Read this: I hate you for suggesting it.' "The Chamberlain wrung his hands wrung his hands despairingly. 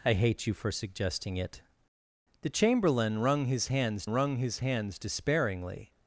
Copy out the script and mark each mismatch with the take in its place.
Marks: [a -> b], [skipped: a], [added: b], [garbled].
I hate you for suggesting it.' "The Chamberlain wrung his hands wrung his hands despairingly.